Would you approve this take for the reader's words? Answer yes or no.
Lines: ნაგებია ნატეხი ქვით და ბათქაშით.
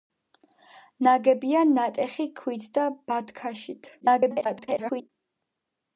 no